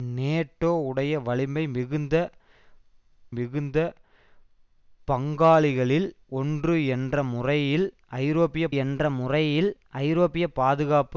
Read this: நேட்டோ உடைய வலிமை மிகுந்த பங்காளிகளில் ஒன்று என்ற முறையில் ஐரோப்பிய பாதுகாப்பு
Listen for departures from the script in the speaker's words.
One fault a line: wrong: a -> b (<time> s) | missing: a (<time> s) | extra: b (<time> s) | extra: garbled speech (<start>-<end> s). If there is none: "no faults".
extra: மிகுந்த (3.3 s)
extra: என்ற முறையில் ஐரோப்பிய (8.7 s)